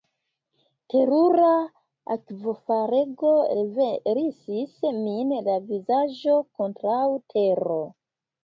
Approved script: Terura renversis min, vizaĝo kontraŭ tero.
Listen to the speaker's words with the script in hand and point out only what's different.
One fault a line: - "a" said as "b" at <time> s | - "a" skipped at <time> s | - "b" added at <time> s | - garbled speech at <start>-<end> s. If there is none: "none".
- "akvofalego" added at 2.1 s
- "la" added at 5.5 s